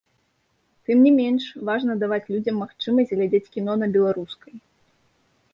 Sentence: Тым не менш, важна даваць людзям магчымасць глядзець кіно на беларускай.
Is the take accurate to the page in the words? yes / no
yes